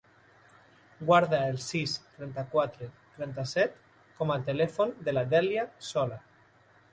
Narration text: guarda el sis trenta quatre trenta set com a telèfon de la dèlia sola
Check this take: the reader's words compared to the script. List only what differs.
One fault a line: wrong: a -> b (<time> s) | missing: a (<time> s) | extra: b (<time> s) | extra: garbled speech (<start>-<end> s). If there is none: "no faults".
no faults